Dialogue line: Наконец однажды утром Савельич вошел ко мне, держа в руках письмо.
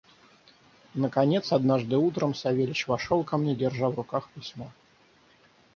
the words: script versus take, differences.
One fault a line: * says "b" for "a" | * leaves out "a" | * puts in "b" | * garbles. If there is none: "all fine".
all fine